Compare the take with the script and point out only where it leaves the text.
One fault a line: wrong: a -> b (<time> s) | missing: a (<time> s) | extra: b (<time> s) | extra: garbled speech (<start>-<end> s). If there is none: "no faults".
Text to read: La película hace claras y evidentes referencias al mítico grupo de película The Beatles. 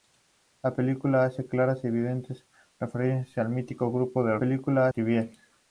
no faults